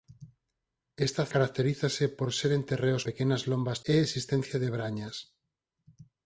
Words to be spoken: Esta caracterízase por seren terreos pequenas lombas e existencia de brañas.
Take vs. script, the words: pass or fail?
pass